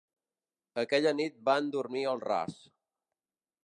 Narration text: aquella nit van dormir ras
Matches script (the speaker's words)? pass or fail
fail